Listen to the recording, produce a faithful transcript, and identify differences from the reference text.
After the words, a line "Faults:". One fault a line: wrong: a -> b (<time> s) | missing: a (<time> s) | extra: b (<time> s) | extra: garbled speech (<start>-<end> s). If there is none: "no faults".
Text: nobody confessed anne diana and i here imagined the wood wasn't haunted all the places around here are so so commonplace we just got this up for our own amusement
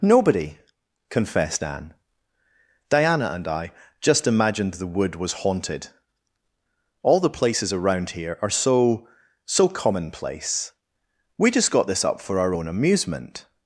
nobody confessed anne diana and i just imagined the wood was haunted all the places around here are so so commonplace we just got this up for our own amusement
Faults:
wrong: here -> just (4.0 s)
wrong: wasn't -> was (5.2 s)